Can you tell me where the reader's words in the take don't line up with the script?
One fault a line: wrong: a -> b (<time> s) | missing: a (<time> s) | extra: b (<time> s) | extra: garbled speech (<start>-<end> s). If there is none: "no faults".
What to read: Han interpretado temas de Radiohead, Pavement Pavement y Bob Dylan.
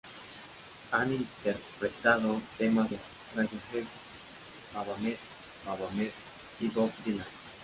no faults